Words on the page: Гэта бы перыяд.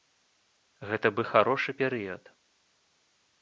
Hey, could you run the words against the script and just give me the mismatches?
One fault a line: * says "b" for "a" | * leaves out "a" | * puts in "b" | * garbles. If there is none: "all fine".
* puts in "харошы"